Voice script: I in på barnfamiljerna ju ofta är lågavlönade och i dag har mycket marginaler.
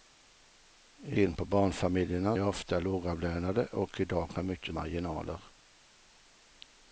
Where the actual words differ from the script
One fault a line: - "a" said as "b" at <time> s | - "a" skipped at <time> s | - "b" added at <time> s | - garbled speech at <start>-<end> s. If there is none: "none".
none